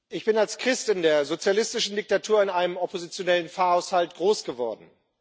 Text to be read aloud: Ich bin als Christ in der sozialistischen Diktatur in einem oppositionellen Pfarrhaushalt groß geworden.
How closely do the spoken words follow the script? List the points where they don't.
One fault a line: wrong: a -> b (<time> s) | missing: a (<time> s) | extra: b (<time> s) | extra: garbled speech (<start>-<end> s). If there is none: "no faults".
no faults